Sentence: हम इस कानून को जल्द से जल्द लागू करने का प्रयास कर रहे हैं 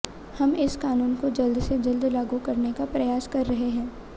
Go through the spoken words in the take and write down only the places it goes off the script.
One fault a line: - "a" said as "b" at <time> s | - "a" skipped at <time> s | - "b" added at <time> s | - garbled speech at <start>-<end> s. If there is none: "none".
none